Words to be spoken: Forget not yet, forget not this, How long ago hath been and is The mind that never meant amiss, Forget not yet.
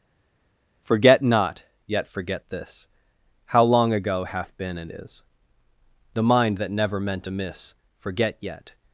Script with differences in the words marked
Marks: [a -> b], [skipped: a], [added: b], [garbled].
Forget not yet, forget [skipped: not] this, How long ago hath been and is The mind that never meant amiss, Forget [skipped: not] yet.